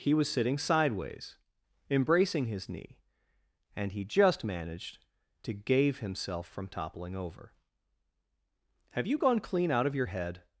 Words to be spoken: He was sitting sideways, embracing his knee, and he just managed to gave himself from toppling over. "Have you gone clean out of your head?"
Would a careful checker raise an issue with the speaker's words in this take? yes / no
no